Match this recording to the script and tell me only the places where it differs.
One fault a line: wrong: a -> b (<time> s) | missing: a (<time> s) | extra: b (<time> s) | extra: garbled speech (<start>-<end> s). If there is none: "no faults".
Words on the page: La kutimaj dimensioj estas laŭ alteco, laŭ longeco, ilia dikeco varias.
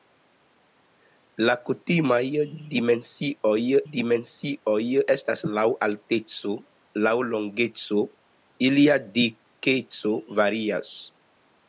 extra: dimensioj (3.9 s)